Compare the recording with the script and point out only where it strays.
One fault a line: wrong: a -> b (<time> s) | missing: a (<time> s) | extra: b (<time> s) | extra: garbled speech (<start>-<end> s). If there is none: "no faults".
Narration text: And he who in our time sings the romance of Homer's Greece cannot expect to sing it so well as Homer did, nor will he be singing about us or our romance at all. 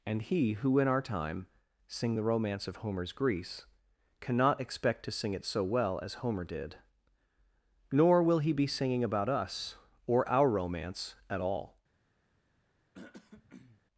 wrong: sings -> sing (1.9 s)